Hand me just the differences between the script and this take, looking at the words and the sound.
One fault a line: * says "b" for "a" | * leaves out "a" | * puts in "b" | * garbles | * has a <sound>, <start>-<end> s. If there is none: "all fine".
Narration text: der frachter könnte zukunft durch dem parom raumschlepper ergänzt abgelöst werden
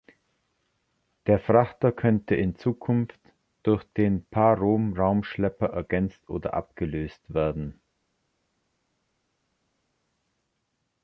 * puts in "in"
* says "den" for "dem"
* puts in "oder"